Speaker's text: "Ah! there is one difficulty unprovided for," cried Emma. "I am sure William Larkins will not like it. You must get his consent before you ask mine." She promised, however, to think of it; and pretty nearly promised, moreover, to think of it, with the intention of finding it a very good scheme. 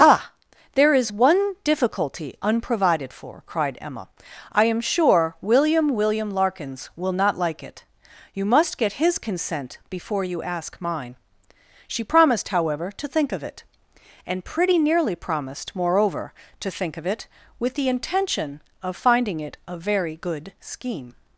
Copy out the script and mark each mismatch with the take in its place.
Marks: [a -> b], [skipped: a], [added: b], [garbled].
"Ah! there is one difficulty unprovided for," cried Emma. "I am sure William [added: William] Larkins will not like it. You must get his consent before you ask mine." She promised, however, to think of it; and pretty nearly promised, moreover, to think of it, with the intention of finding it a very good scheme.